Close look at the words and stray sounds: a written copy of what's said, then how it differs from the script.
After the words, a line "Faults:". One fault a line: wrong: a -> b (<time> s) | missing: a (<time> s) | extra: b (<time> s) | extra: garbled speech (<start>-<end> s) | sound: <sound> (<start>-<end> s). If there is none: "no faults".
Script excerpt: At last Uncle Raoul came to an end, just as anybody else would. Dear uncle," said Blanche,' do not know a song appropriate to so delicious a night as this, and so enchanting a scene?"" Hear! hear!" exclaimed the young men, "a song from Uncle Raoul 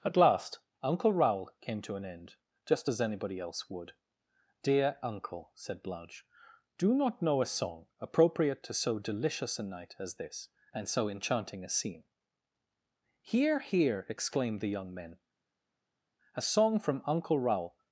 At last Uncle Raoul came to an end, just as anybody else would. Dear uncle," said Blanche,' do not know a song appropriate to so delicious a night as this, and so enchanting a scene?"" Hear! hear!" exclaimed the young men, "a song from Uncle Raoul
Faults:
no faults